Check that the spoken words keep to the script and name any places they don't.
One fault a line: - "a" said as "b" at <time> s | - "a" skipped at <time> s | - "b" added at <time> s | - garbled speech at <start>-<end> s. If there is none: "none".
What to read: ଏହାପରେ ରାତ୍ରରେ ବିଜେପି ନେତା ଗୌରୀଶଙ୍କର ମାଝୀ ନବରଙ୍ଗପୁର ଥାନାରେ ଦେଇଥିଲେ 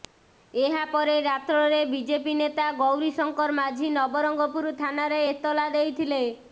- "ଏତଲା" added at 5.3 s